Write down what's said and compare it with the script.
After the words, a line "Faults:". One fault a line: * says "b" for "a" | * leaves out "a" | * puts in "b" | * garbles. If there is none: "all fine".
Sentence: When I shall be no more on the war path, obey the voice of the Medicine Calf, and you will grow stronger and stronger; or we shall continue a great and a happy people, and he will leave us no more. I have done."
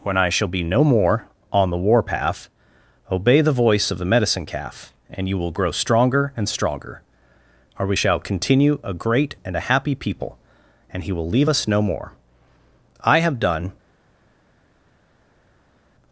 When I shall be no more on the war path, obey the voice of the Medicine Calf, and you will grow stronger and stronger; or we shall continue a great and a happy people, and he will leave us no more. I have done."
Faults:
all fine